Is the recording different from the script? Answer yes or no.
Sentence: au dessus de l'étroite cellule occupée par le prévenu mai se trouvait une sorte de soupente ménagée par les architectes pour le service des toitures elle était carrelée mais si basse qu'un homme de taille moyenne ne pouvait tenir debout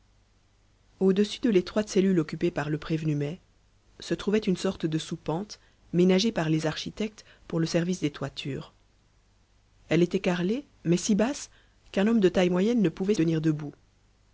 no